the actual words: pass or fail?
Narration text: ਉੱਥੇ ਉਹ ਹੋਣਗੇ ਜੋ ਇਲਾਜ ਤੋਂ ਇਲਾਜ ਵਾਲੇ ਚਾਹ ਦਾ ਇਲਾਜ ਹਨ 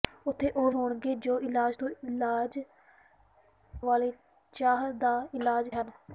pass